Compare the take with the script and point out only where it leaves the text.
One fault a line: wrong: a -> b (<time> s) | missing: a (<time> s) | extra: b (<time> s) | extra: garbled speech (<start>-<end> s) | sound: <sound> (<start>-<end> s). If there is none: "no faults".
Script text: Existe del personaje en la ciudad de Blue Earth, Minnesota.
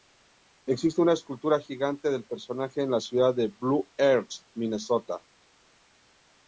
extra: una escultura gigante (1.0 s)